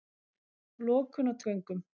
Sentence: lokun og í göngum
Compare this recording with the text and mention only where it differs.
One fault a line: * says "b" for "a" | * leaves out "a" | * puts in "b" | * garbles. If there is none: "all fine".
all fine